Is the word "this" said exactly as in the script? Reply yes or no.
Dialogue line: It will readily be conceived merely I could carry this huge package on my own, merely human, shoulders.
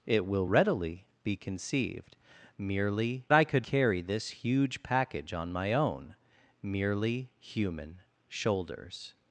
yes